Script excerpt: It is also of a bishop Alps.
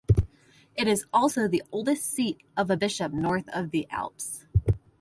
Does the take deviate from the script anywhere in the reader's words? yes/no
yes